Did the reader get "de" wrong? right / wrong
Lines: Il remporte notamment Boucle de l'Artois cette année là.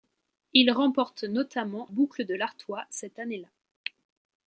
right